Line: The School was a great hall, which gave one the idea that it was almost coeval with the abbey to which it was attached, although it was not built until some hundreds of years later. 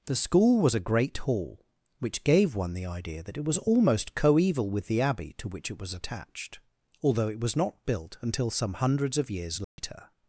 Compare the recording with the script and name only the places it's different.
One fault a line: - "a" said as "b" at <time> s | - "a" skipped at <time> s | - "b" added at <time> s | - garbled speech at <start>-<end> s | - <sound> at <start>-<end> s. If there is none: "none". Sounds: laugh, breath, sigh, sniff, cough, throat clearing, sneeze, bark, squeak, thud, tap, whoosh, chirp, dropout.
- dropout at 9.6-9.8 s